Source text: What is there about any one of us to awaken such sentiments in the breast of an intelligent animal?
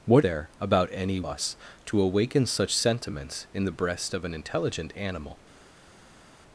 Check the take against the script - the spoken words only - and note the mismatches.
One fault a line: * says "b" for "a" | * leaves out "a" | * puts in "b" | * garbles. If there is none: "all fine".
* leaves out "is"
* leaves out "one of"